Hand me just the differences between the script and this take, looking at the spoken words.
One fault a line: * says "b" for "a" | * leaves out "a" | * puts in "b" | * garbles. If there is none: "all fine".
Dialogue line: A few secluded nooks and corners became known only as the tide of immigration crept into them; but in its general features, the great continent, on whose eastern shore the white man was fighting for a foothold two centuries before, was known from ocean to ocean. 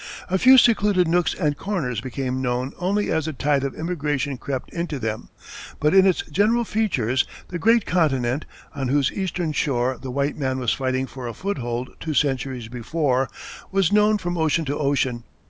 all fine